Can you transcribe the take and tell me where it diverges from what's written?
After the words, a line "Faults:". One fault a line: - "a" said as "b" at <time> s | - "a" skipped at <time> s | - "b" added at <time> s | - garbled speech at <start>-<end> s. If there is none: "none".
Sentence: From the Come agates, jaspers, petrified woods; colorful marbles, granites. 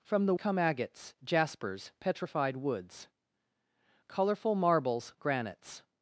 From the Come agates, jaspers, petrified woods; colorful marbles, granites.
Faults:
none